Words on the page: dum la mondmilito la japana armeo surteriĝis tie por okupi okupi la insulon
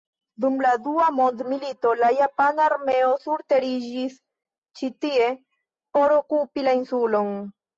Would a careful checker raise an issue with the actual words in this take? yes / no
yes